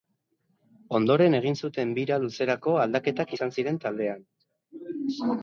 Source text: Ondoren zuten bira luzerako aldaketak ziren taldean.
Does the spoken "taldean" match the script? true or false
true